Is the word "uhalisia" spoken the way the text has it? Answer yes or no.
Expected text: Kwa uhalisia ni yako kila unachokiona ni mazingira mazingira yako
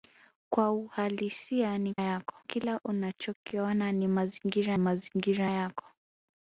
yes